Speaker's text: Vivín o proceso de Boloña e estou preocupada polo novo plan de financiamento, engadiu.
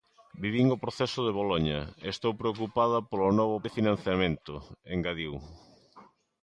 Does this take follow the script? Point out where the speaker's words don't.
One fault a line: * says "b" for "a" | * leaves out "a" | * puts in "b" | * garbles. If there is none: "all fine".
* leaves out "plan"